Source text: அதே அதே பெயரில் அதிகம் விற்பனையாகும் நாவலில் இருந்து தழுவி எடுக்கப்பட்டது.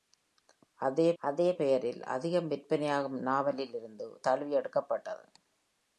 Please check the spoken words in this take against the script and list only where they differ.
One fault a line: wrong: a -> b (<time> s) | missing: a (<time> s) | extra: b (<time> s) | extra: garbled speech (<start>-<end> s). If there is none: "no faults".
no faults